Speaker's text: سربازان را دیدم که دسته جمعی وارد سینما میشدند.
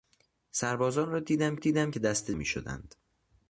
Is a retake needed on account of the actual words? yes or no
yes